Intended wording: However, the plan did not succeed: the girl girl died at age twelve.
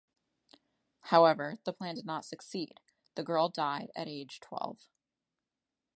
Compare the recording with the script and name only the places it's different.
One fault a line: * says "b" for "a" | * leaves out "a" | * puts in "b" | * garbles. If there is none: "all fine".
* leaves out "girl"